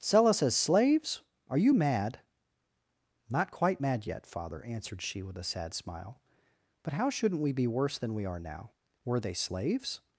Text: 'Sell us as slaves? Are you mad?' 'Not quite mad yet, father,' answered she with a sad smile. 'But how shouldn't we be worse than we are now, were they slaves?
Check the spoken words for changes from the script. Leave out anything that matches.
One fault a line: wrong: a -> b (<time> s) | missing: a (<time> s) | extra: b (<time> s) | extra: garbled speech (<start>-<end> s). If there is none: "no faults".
no faults